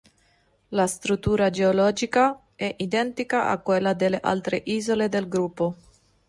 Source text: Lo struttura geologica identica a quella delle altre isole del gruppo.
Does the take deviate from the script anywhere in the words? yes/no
yes